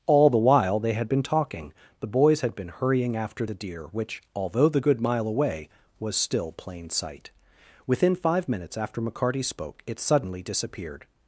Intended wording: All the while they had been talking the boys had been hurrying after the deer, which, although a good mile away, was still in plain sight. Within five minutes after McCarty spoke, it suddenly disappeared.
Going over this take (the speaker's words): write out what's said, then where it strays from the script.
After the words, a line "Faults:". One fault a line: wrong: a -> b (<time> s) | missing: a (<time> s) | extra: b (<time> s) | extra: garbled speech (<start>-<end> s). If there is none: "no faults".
All the while they had been talking the boys had been hurrying after the deer, which, although the good mile away, was still plain sight. Within five minutes after McCarty spoke, it suddenly disappeared.
Faults:
wrong: a -> the (4.7 s)
missing: in (6.5 s)